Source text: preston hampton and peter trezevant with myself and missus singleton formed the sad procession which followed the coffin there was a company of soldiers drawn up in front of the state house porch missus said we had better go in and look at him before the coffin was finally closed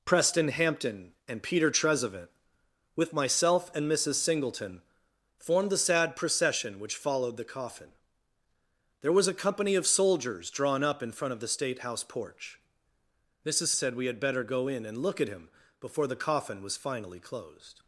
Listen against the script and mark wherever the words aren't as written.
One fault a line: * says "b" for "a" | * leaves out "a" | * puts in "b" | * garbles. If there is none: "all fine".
all fine